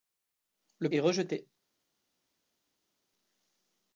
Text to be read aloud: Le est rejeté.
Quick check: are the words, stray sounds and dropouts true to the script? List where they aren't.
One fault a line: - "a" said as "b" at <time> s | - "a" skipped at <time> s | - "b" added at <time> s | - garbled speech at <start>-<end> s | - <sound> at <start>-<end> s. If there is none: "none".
none